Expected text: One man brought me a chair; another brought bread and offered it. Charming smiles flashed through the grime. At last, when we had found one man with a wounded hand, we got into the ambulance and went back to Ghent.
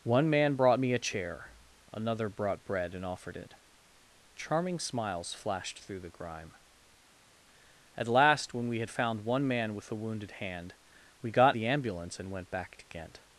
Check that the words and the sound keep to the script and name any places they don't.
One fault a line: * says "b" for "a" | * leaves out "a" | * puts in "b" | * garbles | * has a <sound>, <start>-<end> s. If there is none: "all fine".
* leaves out "into"